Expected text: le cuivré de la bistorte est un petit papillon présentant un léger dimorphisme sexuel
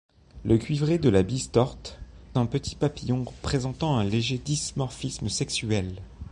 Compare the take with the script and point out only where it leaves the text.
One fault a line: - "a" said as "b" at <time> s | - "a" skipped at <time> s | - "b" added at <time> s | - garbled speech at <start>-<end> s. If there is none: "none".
- "est" skipped at 2.0 s